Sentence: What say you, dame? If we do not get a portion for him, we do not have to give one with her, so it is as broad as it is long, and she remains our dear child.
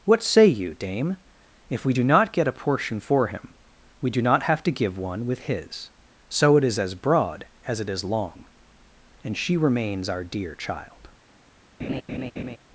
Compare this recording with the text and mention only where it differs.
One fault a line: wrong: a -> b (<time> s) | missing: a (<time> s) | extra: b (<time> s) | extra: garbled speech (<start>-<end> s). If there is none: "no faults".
wrong: her -> his (5.4 s)